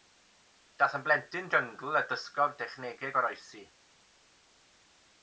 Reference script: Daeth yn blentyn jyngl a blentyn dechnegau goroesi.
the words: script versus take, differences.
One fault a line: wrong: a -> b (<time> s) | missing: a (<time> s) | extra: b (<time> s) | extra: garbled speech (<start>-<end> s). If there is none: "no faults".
wrong: blentyn -> dysgodd (2.1 s)